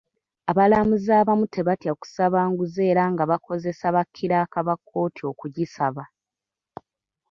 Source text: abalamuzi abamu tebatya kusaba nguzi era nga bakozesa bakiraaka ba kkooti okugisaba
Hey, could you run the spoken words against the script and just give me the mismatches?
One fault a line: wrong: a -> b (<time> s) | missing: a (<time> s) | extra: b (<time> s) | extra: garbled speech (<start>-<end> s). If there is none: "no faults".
no faults